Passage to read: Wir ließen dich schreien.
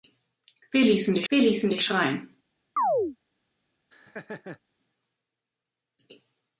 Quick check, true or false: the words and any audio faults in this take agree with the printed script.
false